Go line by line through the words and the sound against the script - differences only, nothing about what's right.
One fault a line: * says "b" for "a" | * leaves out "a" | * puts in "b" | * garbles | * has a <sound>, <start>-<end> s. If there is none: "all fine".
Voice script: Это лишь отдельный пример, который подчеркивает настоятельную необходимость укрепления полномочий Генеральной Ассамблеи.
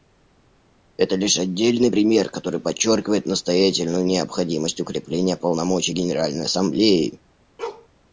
* has a bark, 7.6-7.9 s